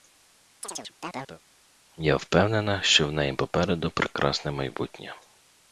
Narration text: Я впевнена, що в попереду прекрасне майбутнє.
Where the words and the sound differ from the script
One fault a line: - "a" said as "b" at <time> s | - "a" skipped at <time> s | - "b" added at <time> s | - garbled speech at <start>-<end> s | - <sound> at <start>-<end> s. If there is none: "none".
- chirp at 0.6-1.4 s
- "неї" added at 3.1 s